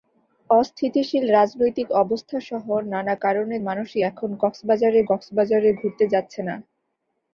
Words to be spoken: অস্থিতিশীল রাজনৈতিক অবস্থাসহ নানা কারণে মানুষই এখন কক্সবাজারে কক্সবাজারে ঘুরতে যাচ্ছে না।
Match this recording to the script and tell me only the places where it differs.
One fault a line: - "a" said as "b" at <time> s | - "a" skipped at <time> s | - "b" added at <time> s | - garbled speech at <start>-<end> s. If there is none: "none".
none